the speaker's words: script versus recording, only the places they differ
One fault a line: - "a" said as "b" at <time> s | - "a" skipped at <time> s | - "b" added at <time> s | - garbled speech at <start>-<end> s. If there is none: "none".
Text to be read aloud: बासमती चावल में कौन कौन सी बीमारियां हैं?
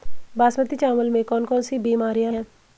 none